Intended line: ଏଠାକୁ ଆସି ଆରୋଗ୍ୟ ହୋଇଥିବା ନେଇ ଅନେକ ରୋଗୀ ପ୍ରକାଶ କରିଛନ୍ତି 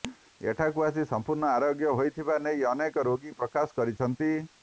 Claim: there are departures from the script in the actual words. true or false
true